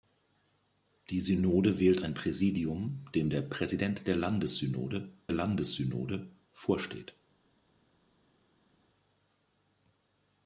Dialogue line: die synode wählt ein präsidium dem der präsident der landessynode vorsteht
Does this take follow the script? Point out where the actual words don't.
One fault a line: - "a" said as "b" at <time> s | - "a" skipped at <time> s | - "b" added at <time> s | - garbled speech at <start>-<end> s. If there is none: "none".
- "landessynode" added at 5.3 s